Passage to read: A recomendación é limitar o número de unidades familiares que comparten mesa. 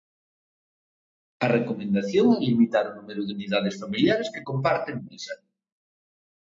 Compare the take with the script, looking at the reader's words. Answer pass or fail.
pass